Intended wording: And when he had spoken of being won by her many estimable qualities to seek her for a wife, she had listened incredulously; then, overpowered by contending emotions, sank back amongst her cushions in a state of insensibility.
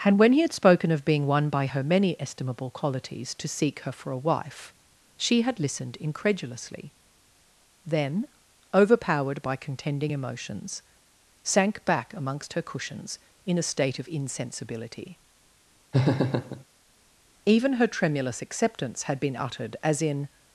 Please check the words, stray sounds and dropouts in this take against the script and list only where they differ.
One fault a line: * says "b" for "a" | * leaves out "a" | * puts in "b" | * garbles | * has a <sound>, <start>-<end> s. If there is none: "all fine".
* has a laugh, 15.9-16.6 s
* puts in "Even her tremulous acceptance had been uttered as in"